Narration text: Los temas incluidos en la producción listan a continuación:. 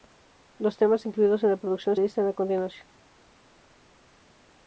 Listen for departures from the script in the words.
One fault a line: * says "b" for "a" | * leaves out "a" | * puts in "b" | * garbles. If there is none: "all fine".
all fine